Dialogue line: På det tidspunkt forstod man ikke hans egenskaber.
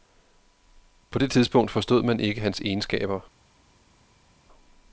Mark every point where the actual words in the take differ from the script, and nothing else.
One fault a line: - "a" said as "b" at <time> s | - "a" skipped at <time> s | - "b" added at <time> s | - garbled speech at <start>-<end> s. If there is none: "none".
none